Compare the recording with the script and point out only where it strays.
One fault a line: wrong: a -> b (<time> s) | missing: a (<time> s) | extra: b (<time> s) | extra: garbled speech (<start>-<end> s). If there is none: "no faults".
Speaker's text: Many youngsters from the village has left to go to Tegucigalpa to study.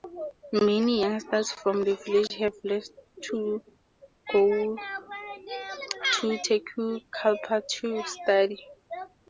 wrong: has -> have (2.4 s)